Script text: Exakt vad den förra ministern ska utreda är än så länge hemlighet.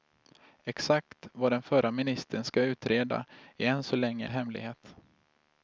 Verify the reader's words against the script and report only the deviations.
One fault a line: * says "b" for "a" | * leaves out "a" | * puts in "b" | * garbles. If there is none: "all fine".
all fine